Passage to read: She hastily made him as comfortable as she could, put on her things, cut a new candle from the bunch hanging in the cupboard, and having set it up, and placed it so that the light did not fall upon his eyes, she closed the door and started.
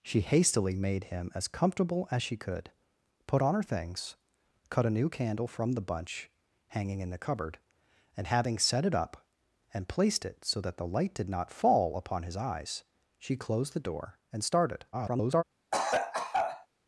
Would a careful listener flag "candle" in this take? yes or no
no